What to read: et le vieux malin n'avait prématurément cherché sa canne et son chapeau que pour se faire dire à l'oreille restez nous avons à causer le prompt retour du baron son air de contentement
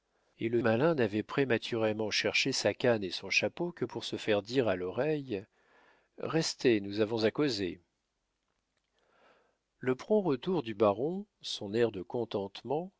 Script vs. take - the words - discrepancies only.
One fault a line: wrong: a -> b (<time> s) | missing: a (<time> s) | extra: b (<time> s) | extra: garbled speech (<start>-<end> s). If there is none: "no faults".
missing: vieux (0.6 s)